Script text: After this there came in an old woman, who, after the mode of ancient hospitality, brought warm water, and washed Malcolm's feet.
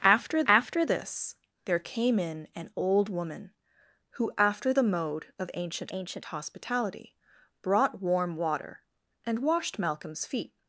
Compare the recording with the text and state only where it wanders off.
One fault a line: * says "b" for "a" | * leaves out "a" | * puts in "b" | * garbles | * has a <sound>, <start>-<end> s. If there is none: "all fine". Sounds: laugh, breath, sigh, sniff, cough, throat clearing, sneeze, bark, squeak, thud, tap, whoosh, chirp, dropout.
* puts in "after"
* puts in "ancient"